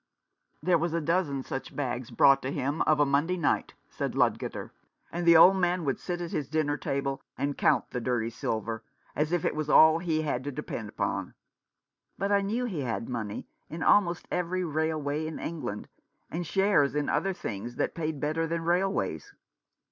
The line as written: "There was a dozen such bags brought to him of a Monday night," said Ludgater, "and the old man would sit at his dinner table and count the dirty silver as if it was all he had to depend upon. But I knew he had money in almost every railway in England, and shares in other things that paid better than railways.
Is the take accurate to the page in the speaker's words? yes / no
yes